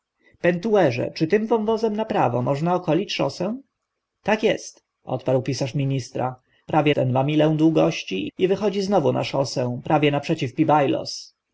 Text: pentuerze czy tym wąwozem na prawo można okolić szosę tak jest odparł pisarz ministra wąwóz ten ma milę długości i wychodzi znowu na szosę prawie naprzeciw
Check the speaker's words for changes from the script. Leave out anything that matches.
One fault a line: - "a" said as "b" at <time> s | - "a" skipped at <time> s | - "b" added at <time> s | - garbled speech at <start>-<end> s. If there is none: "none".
- "wąwóz" said as "prawie" at 6.7 s